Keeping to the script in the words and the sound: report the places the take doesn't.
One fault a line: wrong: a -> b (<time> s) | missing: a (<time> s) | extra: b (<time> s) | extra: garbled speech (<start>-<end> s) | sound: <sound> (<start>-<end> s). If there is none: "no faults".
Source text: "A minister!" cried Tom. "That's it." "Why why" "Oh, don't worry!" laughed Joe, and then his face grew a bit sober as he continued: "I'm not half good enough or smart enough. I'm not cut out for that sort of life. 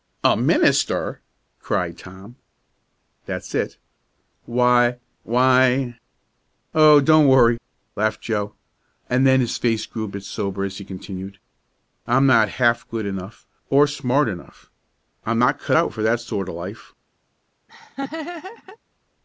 sound: laugh (17.7-18.8 s)